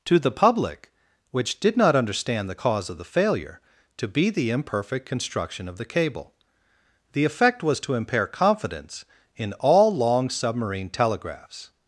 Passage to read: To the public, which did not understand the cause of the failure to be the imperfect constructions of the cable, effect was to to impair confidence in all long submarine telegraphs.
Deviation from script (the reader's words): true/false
true